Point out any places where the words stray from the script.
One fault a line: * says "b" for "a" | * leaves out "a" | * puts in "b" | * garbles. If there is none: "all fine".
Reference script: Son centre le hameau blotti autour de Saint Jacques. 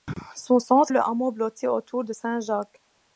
all fine